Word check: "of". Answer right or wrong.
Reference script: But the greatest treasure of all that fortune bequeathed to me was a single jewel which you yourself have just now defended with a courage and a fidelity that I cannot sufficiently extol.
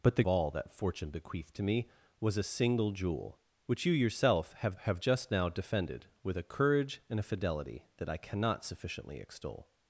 wrong